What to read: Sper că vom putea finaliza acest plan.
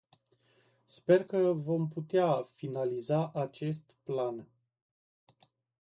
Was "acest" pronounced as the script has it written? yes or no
yes